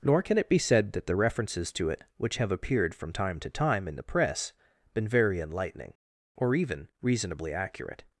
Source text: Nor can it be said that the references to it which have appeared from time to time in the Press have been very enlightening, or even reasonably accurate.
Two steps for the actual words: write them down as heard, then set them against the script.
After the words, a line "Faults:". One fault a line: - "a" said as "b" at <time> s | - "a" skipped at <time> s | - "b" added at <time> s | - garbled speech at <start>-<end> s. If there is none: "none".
Nor can it be said that the references to it which have appeared from time to time in the Press been very enlightening, or even reasonably accurate.
Faults:
- "have" skipped at 4.5 s